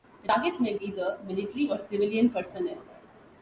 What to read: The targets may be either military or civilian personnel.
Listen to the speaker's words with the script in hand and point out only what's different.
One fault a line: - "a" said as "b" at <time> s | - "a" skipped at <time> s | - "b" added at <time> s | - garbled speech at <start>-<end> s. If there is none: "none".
- "be" skipped at 0.8 s